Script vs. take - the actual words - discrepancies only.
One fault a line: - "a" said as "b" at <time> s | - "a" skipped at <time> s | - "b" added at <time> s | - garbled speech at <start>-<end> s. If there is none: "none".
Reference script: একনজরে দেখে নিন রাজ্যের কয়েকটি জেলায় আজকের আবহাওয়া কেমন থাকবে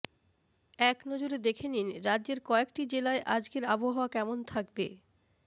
none